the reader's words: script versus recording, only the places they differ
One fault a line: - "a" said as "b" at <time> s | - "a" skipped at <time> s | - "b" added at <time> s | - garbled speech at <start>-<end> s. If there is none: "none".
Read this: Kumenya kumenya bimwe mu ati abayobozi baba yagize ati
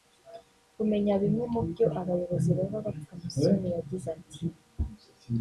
- "kumenya" skipped at 1.1 s
- "ati" said as "byo" at 1.7 s
- "bapfa Musoni" added at 2.8 s